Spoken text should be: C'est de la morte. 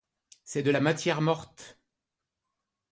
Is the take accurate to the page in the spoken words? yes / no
no